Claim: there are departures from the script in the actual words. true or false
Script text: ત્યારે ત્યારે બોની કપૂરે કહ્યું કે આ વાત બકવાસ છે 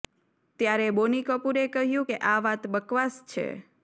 true